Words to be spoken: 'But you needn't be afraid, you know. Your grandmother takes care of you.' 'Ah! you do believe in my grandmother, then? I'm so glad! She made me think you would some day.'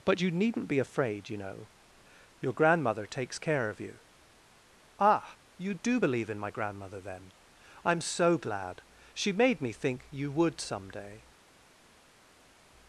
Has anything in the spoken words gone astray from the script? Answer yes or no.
no